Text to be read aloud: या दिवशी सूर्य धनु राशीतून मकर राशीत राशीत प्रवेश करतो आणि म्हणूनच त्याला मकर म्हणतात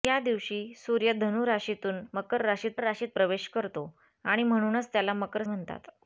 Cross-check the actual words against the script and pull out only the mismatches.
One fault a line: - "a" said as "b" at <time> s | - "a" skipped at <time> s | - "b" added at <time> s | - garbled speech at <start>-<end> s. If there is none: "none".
none